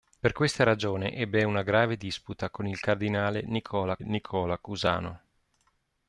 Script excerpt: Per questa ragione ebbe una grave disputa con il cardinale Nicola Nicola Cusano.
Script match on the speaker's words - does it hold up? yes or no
yes